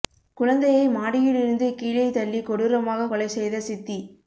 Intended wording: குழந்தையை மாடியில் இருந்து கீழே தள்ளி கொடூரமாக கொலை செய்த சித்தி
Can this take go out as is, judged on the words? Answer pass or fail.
pass